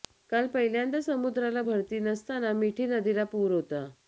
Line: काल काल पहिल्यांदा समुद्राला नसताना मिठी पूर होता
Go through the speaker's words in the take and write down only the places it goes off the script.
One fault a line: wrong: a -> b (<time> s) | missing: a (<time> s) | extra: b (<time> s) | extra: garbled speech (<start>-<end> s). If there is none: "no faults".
missing: काल (0.5 s)
extra: भरती (1.6 s)
extra: नदीला (2.9 s)